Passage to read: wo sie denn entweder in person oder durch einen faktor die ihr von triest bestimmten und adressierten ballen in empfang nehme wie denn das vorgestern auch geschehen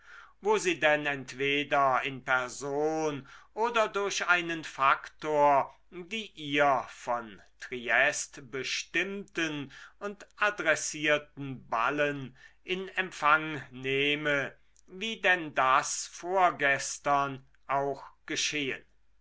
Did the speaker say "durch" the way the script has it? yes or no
yes